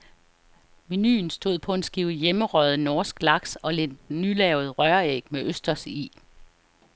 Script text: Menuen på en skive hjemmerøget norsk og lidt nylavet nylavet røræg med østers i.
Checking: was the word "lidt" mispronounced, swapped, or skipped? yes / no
no